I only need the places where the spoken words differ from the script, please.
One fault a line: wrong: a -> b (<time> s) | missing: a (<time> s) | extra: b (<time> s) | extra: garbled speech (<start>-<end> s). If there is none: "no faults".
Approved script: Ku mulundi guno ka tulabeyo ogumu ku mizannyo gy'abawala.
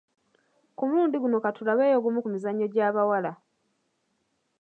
no faults